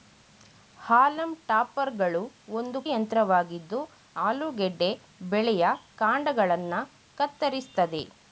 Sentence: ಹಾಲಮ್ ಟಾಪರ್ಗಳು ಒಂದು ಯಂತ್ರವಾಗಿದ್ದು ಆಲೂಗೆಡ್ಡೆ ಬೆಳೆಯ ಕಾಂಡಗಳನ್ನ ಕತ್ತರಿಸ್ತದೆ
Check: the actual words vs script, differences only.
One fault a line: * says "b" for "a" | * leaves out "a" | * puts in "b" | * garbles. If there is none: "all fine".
all fine